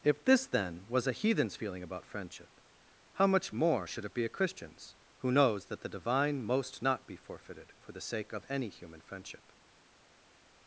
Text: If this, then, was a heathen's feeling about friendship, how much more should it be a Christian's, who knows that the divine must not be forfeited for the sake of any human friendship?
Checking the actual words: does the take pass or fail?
fail